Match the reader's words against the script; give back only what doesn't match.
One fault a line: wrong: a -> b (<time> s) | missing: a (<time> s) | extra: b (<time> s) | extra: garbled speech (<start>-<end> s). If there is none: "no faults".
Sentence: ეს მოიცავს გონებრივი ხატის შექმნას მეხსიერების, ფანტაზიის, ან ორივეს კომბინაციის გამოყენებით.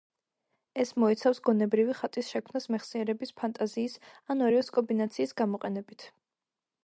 no faults